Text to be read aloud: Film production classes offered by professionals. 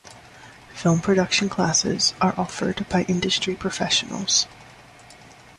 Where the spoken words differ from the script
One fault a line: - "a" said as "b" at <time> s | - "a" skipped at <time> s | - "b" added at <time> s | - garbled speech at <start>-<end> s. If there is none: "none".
- "are" added at 2.2 s
- "industry" added at 3.1 s